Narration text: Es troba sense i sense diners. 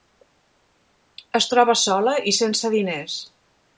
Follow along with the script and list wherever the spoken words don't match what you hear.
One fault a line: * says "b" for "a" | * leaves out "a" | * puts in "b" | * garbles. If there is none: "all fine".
* says "sola" for "sense"